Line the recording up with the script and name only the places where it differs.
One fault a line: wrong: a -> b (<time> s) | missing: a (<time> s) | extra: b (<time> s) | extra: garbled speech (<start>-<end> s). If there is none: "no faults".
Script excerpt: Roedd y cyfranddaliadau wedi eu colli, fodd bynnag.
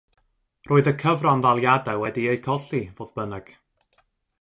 no faults